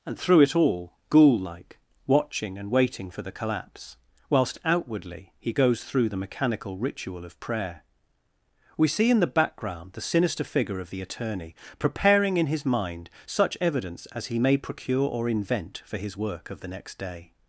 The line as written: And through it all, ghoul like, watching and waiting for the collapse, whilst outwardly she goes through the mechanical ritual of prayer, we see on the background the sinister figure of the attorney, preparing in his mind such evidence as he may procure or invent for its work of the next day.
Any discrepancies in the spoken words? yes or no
yes